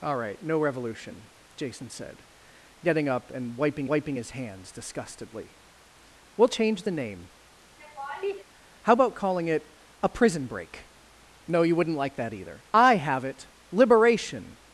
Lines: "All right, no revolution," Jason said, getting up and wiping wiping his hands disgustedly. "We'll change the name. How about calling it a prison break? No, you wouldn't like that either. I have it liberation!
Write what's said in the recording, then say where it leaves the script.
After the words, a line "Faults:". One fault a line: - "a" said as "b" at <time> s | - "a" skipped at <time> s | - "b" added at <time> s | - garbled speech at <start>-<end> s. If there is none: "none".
"All right, no revolution," Jason said, getting up and wiping wiping his hands disgustedly. "We'll change the name. How about calling it a prison break? No, you wouldn't like that either. I have it liberation!
Faults:
none